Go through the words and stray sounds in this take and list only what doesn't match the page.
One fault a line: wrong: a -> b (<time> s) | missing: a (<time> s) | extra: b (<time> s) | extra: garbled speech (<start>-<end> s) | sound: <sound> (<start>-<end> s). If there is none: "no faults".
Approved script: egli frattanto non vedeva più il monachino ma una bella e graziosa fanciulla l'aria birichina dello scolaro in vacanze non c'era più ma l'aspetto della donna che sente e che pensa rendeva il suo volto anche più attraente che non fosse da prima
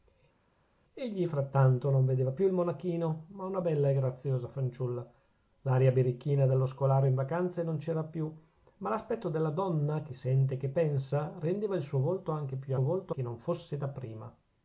wrong: attraente -> volto (12.8 s)